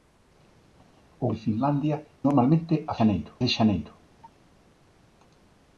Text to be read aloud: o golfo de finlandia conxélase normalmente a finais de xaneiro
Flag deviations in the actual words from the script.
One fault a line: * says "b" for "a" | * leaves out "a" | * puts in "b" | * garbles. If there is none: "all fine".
* leaves out "golfo"
* leaves out "conxélase"
* says "xaneiro" for "finais"